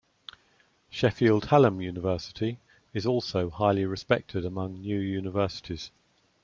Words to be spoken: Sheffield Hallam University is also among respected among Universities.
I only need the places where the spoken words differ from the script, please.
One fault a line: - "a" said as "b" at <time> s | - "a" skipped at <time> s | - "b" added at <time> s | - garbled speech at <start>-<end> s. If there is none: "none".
- "among" said as "highly" at 3.5 s
- "New" added at 4.7 s